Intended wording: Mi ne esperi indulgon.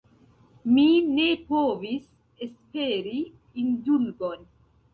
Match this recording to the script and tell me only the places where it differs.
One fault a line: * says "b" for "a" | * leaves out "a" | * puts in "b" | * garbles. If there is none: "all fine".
* puts in "povis"